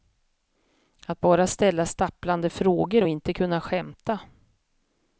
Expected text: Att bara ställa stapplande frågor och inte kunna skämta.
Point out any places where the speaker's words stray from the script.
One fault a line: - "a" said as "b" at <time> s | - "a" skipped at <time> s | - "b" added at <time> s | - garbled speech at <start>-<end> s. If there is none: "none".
none